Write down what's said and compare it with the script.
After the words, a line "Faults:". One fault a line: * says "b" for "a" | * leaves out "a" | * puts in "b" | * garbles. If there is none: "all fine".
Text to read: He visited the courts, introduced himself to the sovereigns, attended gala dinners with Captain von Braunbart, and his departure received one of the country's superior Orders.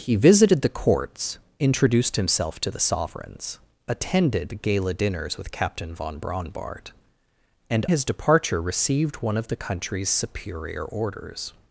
He visited the courts, introduced himself to the sovereigns, attended gala dinners with Captain von Braunbart, and his departure received one of the country's superior Orders.
Faults:
all fine